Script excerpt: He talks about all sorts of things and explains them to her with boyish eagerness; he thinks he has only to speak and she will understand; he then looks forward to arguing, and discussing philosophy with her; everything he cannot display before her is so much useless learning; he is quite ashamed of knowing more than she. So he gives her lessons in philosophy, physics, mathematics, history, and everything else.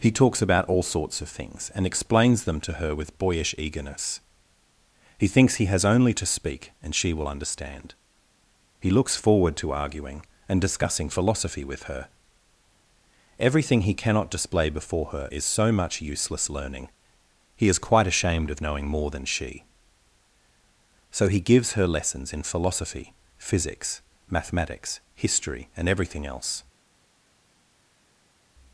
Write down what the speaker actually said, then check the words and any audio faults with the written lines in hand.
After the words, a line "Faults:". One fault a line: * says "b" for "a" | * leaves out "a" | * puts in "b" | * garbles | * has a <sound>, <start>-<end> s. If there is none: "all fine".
He talks about all sorts of things and explains them to her with boyish eagerness; he thinks he has only to speak and she will understand; he looks forward to arguing, and discussing philosophy with her; everything he cannot display before her is so much useless learning; he is quite ashamed of knowing more than she. So he gives her lessons in philosophy, physics, mathematics, history, and everything else.
Faults:
* leaves out "then"